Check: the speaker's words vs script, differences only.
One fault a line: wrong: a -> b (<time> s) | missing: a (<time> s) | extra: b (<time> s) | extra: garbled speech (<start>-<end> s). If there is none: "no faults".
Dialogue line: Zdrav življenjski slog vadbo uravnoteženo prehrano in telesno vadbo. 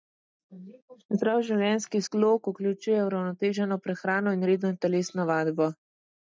wrong: vadbo -> vključuje (2.5 s)
extra: redno (4.5 s)